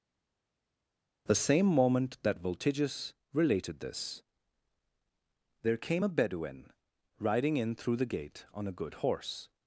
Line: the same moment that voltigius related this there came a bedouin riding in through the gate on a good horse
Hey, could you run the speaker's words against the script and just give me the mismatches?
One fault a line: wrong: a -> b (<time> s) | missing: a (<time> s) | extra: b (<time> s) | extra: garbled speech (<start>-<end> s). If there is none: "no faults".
no faults